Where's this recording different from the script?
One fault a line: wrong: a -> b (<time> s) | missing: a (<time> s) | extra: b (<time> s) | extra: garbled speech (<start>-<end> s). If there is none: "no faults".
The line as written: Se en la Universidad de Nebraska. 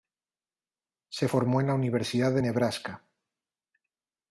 extra: formó (1.2 s)